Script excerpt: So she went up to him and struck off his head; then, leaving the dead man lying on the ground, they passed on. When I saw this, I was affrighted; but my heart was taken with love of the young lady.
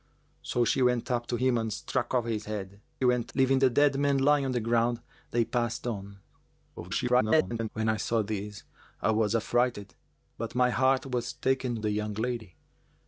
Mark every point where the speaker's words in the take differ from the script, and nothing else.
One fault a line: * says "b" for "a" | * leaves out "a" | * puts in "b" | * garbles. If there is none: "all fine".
* says "went" for "then"
* garbles
* leaves out "with love of"